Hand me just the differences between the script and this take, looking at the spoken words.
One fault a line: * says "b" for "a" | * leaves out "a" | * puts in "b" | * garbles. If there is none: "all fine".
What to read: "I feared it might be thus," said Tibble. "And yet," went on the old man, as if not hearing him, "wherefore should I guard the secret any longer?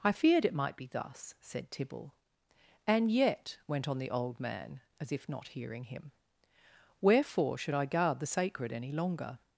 * says "sacred" for "secret"